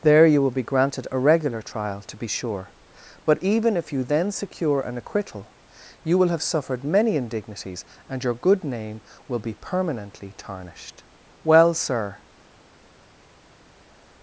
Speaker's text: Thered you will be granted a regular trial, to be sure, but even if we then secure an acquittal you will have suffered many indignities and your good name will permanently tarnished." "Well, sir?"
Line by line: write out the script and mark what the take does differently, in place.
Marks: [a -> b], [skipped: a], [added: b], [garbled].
[Thered -> There] you will be granted a regular trial, to be sure, but even if [we -> you] then secure an acquittal you will have suffered many indignities and your good name will [added: be] permanently tarnished." "Well, sir?"